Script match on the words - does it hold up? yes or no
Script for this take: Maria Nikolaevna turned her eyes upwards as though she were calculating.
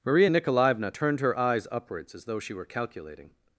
yes